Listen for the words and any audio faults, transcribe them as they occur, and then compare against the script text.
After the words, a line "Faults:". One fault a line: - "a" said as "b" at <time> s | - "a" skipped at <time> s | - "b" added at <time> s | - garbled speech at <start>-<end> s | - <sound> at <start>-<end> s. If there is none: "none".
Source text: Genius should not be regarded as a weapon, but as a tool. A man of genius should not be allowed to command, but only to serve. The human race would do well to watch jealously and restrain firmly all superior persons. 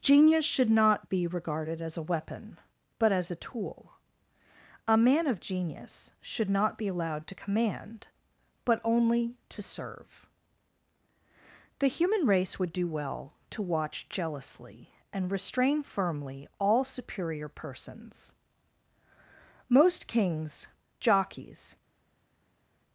Genius should not be regarded as a weapon, but as a tool. A man of genius should not be allowed to command, but only to serve. The human race would do well to watch jealously and restrain firmly all superior persons. Most kings, jockeys
Faults:
- "Most kings jockeys" added at 19.7 s